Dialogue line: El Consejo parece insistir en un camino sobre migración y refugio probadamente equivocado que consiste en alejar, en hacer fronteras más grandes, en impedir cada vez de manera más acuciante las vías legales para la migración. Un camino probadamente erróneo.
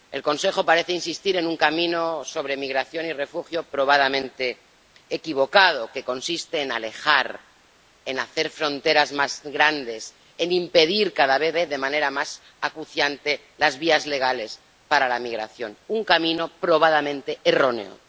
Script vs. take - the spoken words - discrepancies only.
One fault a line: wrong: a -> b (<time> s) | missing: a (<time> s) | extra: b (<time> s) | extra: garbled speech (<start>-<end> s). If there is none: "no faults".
extra: vez (11.5 s)